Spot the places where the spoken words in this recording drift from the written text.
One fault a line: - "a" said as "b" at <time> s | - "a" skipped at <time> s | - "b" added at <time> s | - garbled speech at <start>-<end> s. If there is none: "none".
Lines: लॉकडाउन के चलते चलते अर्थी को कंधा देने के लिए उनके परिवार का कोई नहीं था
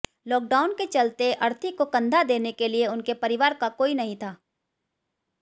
- "चलते" skipped at 1.3 s